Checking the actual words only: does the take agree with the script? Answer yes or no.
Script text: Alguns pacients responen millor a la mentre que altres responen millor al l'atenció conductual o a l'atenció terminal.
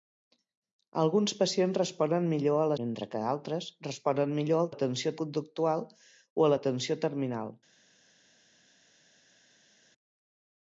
yes